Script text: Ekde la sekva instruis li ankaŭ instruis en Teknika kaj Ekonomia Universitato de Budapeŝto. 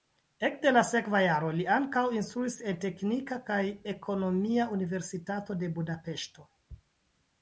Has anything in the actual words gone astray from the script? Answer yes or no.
yes